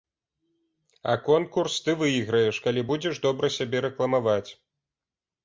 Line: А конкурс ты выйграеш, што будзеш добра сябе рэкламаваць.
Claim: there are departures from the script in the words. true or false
true